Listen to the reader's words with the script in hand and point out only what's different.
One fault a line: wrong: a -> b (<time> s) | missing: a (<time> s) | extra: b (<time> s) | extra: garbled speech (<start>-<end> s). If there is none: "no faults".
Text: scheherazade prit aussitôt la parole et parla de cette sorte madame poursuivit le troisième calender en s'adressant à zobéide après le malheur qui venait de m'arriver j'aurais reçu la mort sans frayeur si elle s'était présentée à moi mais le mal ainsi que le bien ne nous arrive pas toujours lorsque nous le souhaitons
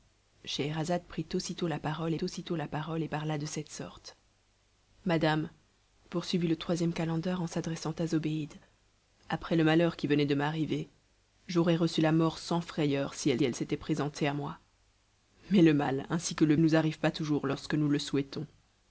extra: aussitôt la parole (2.2 s)
extra: elle (13.4 s)
missing: bien ne (16.5 s)